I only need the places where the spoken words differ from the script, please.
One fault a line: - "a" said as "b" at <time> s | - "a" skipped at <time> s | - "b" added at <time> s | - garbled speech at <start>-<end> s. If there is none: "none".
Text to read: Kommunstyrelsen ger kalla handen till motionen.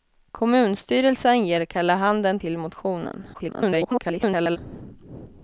- garbled speech at 3.3-4.6 s